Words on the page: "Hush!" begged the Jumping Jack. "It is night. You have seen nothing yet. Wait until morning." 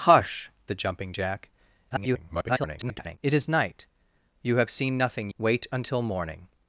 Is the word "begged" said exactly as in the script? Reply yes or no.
no